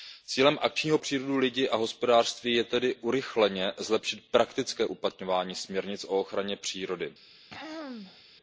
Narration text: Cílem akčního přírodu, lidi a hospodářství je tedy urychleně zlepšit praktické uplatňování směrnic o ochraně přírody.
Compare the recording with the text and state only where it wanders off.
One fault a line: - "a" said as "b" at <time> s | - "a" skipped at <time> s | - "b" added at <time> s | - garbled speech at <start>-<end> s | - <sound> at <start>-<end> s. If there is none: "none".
- throat clearing at 7.5-8.2 s